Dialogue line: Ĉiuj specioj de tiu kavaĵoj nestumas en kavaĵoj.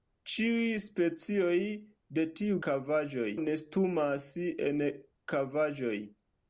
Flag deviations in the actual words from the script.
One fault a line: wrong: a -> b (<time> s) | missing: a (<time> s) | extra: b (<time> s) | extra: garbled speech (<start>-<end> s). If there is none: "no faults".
no faults